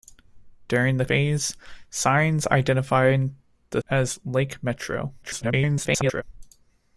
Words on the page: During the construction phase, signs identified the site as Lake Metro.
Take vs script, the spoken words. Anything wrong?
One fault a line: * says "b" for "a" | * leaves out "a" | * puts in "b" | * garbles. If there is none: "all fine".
* leaves out "construction"
* leaves out "site"
* garbles